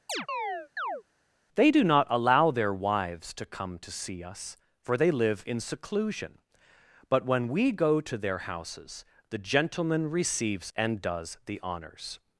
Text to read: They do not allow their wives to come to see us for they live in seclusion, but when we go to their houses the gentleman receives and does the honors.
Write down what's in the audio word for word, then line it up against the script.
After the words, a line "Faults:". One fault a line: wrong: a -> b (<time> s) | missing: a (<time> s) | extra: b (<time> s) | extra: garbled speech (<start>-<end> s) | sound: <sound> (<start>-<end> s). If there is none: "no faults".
They do not allow their wives to come to see us for they live in seclusion, but when we go to their houses the gentleman receives and does the honors.
Faults:
sound: chirp (0.1-1.0 s)